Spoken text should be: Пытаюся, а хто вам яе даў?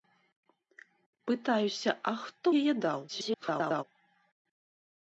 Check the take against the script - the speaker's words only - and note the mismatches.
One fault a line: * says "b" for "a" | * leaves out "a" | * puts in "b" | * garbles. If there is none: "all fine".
* leaves out "вам"
* garbles